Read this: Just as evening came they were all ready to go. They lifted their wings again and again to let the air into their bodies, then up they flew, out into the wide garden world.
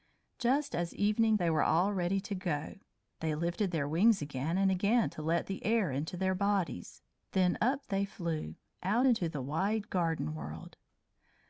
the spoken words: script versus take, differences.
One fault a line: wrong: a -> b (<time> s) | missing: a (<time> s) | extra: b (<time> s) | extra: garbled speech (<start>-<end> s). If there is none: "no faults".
missing: came (1.4 s)